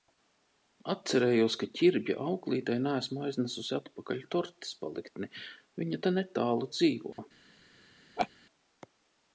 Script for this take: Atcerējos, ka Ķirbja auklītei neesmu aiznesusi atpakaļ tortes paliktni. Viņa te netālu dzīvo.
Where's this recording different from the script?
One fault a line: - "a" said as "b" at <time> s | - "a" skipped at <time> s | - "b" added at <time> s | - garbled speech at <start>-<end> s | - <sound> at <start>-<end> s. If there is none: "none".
- dropout at 7.1-7.2 s
- laugh at 8.2-8.3 s